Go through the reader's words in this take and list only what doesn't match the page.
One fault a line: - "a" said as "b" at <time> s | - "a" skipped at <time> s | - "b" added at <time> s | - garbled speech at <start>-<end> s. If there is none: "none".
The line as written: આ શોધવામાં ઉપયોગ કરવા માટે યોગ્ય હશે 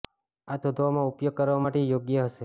none